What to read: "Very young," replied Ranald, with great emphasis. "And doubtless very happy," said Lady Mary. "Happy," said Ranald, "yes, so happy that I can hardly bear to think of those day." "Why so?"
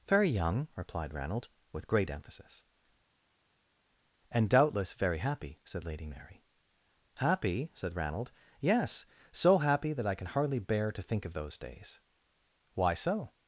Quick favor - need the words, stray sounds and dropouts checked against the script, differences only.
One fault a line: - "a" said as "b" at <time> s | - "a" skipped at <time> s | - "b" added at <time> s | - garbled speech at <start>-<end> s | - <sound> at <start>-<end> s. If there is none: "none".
- "day" said as "days" at 11.6 s